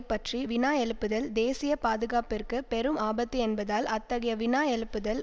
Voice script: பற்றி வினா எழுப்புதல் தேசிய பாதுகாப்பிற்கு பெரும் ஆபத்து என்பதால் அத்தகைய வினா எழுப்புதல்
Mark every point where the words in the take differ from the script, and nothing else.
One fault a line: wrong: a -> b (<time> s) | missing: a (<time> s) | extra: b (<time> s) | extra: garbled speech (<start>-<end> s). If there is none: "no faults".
no faults